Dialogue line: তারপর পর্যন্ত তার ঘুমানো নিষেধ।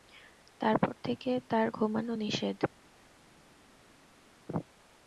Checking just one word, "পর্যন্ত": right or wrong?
wrong